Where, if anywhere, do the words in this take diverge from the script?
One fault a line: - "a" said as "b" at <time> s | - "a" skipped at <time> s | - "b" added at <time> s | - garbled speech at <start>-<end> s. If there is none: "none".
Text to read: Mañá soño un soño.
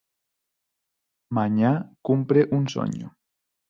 - "soño" said as "cumpre" at 2.0 s